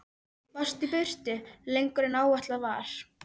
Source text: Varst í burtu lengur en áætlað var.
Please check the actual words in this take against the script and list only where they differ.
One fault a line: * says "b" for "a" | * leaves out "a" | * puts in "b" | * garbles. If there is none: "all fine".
all fine